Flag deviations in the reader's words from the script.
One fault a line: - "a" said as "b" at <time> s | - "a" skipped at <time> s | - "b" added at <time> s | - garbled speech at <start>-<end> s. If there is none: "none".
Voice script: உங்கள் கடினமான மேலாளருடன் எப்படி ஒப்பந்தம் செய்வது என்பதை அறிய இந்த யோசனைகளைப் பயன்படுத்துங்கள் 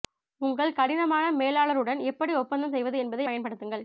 - "அறிய இந்த யோசனைகளைப்" skipped at 3.3 s